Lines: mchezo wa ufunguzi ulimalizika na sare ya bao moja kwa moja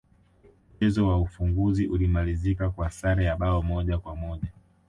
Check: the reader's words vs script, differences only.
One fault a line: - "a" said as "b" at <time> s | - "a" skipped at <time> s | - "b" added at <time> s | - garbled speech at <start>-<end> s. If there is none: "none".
- "na" said as "kwa" at 2.7 s